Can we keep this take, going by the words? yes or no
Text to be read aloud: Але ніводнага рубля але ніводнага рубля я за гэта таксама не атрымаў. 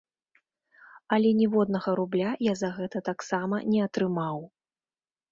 no